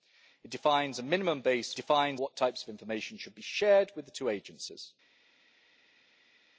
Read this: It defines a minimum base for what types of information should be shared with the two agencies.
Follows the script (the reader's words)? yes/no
no